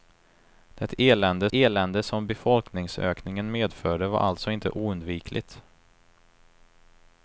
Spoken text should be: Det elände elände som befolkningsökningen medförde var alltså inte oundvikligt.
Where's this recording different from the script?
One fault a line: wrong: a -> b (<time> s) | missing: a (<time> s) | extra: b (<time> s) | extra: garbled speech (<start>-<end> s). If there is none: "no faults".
no faults